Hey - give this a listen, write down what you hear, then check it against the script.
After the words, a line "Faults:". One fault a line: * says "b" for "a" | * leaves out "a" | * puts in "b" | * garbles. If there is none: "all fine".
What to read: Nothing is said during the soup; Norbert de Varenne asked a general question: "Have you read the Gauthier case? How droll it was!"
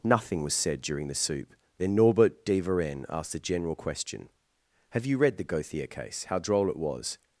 Nothing was said during the soup; then Norbert de Varenne asked a general question: "Have you read the Gauthier case? How droll it was!"
Faults:
* says "was" for "is"
* puts in "then"